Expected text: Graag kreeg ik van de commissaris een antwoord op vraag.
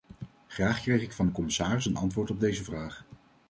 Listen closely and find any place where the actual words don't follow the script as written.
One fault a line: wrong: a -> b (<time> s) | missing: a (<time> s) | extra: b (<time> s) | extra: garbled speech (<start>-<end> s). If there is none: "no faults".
extra: deze (2.4 s)